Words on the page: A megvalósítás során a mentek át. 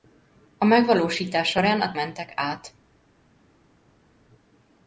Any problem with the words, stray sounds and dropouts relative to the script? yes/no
no